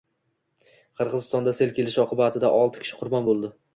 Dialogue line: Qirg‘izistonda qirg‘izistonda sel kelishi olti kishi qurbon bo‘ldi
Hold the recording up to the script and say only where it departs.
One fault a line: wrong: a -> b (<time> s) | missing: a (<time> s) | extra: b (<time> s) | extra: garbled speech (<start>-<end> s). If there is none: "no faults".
missing: qirg‘izistonda (1.5 s)
extra: oqibatida (2.0 s)